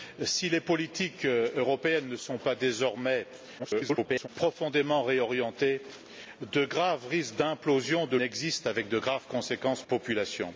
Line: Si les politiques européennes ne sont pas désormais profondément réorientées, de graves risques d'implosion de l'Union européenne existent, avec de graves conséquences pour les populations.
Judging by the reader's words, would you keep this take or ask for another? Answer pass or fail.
fail